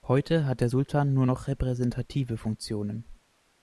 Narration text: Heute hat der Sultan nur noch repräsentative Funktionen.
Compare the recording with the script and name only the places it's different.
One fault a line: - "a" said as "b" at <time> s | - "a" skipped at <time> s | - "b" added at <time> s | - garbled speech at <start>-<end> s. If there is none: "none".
none